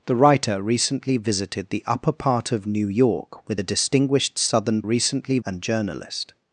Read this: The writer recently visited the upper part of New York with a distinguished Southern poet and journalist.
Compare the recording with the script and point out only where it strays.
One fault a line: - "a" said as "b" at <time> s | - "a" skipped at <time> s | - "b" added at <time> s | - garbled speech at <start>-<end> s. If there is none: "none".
- "poet" said as "recently" at 4.8 s